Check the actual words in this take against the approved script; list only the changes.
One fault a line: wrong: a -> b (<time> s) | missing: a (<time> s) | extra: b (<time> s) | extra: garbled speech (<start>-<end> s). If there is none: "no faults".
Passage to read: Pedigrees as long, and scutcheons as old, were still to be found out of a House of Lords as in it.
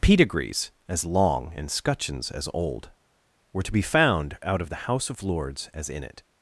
missing: still (3.6 s)
wrong: a -> the (4.7 s)